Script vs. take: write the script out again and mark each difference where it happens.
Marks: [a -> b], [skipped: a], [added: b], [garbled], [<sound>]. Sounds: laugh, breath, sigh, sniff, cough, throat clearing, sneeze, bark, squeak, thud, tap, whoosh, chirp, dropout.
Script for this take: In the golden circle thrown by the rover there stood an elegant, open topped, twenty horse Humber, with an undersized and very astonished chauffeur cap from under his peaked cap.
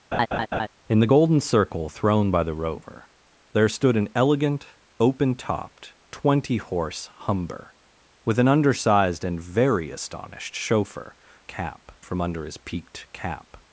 [laugh] In the golden circle thrown by the rover there stood an elegant, open topped, twenty horse Humber, with an undersized and very astonished chauffeur cap from under his peaked cap.